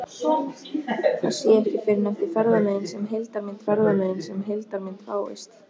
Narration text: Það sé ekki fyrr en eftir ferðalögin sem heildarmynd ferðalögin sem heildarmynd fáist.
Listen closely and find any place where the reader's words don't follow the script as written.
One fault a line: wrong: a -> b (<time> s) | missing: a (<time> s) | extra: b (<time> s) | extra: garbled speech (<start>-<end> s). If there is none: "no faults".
no faults